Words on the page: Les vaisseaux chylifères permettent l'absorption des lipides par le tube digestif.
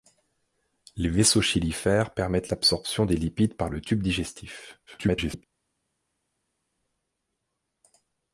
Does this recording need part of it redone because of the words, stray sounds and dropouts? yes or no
yes